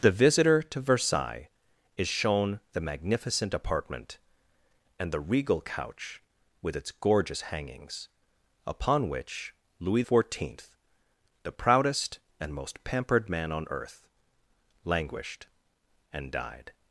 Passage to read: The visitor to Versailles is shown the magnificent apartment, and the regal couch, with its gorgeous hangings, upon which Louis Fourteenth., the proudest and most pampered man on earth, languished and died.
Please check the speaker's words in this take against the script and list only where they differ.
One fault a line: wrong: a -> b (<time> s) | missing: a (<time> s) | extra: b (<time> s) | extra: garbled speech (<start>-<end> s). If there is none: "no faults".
no faults